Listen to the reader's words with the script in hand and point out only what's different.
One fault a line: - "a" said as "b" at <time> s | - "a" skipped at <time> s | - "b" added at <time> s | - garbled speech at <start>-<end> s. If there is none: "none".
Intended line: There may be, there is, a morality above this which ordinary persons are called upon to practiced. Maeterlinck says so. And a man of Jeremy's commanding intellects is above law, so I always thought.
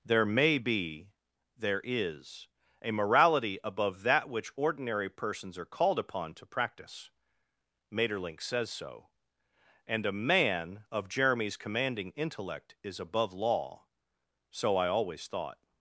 - "this" said as "that" at 4.0 s
- "practiced" said as "practice" at 6.5 s
- "intellects" said as "intellect" at 12.1 s